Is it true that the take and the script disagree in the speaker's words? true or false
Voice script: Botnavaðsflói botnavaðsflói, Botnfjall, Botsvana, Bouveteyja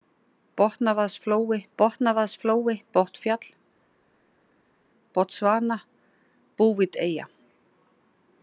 false